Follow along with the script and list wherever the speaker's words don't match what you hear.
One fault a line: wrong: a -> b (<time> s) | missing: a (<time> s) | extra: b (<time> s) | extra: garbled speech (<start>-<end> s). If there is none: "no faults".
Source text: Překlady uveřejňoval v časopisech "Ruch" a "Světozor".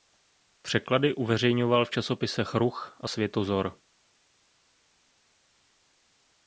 no faults